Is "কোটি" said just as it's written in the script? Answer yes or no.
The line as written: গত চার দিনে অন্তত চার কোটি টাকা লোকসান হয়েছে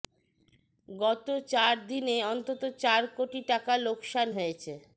yes